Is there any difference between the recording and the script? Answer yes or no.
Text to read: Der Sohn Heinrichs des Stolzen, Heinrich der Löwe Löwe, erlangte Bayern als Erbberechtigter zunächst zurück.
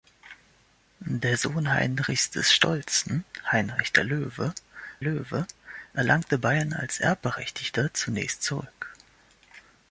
no